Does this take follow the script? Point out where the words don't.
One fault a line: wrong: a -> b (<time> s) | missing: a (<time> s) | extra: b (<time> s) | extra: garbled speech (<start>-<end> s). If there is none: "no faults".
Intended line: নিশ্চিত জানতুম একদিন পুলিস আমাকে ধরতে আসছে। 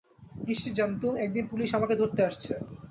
no faults